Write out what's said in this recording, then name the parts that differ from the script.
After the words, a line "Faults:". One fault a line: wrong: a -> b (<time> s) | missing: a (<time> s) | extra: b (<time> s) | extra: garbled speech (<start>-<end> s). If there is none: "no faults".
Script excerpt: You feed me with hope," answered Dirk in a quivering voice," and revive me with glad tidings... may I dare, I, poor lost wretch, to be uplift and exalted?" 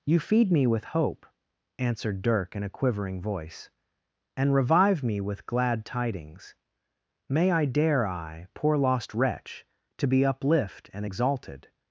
You feed me with hope," answered Dirk in a quivering voice," and revive me with glad tidings... may I dare, I, poor lost wretch, to be uplift and exalted?"
Faults:
no faults